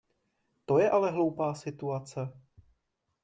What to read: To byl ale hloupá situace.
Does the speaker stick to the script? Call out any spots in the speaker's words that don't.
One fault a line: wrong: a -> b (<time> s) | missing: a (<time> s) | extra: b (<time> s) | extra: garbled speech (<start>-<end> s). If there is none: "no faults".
wrong: byl -> je (0.8 s)